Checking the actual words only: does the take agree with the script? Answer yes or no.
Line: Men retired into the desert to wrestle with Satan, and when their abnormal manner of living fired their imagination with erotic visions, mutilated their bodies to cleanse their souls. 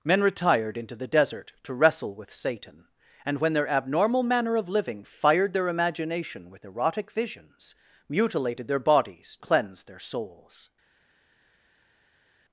no